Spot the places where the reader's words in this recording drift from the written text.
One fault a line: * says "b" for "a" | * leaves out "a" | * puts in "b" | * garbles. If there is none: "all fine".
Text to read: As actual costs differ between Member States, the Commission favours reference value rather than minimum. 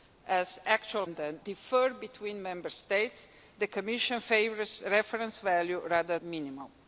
* says "than" for "costs"
* leaves out "than"